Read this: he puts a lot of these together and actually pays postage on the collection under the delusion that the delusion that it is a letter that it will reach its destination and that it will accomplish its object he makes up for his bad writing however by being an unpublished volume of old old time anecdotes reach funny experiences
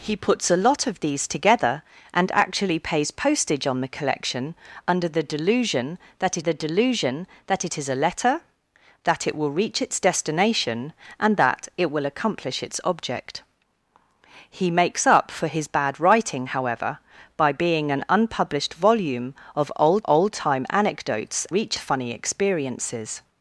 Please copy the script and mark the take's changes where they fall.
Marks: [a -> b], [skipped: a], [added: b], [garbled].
he puts a lot of these together and actually pays postage on the collection under the delusion that the delusion that it is a letter that it will reach its destination and that it will accomplish its object he makes up for his bad writing however by being an unpublished volume of old old time anecdotes reach funny experiences